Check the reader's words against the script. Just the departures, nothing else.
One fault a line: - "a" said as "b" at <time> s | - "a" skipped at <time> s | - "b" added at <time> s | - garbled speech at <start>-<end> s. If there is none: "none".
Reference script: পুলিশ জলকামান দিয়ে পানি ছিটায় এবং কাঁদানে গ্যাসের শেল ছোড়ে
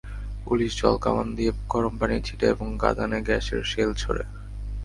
- "গরম" added at 1.7 s